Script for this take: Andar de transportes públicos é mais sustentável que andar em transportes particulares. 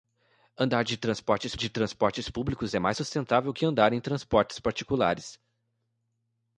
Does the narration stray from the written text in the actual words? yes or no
yes